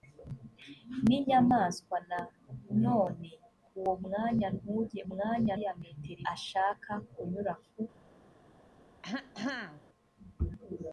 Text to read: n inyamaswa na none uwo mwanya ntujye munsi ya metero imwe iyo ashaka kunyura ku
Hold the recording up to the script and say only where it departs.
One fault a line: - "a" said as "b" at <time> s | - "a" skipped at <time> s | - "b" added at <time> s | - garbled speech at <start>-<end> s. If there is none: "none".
- "munsi" said as "mwanya" at 5.1 s
- "imwe iyo" skipped at 6.2 s